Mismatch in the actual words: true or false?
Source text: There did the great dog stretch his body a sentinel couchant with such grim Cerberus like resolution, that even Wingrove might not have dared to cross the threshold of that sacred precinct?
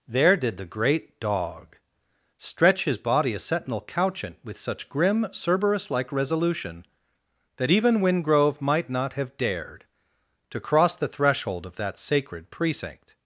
false